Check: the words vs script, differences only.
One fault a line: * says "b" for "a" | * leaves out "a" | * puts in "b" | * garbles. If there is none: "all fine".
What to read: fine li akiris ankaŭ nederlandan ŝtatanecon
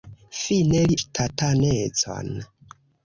* leaves out "akiris ankaŭ nederlandan"